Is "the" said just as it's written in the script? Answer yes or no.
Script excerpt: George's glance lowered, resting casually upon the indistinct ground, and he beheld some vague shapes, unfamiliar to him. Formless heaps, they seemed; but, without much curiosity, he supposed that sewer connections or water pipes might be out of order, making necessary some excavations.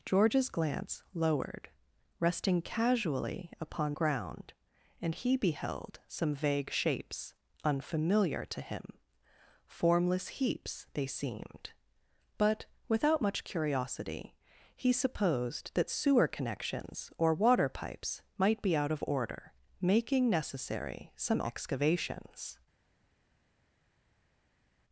no